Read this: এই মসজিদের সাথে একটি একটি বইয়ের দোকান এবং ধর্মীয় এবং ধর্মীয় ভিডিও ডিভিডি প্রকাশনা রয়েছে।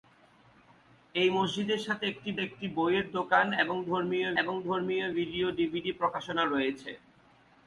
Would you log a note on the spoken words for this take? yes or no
no